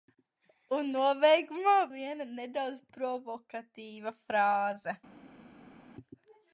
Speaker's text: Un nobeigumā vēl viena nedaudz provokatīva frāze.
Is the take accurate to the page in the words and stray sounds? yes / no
no